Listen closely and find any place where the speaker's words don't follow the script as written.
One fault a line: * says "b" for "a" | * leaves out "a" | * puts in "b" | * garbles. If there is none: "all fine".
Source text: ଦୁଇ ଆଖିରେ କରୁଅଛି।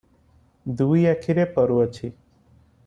all fine